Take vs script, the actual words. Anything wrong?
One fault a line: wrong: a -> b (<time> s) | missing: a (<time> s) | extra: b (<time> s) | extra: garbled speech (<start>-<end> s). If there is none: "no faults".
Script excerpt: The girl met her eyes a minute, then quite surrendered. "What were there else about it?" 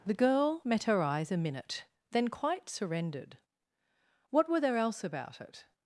no faults